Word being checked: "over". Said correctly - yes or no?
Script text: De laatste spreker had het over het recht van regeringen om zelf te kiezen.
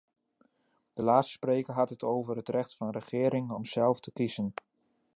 yes